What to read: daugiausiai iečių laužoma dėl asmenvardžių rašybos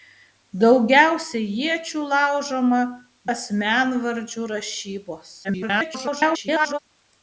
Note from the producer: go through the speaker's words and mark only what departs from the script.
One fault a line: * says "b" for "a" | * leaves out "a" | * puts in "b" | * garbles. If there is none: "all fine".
* leaves out "dėl"
* garbles